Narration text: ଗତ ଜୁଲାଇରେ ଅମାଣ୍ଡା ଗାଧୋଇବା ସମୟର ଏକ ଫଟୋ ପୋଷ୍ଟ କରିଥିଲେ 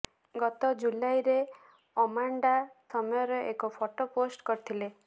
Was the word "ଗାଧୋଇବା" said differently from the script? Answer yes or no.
yes